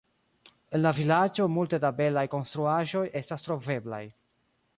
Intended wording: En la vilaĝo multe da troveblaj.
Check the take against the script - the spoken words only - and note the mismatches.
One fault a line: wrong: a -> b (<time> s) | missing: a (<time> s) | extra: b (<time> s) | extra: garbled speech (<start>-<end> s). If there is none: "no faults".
extra: belaj konstruaĵoj estas (2.0 s)